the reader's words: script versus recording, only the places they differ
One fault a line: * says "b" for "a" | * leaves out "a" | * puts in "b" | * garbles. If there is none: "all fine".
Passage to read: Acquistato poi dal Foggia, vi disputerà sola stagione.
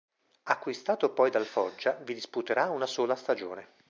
* puts in "una"